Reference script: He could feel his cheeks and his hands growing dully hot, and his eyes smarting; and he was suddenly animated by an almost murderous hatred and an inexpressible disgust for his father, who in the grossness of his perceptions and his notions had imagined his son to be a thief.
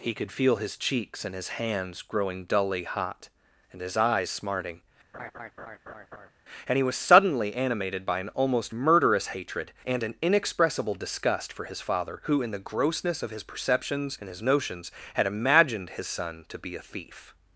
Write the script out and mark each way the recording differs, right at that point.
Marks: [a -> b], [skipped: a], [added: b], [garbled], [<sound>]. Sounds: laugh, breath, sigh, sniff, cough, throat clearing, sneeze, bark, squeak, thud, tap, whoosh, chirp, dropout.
He could feel his cheeks and his hands growing dully hot, and his eyes smarting; [laugh] and he was suddenly animated by an almost murderous hatred and an inexpressible disgust for his father, who in the grossness of his perceptions and his notions had imagined his son to be a thief.